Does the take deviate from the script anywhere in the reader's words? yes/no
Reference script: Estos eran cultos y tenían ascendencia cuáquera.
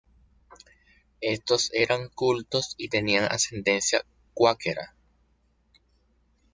no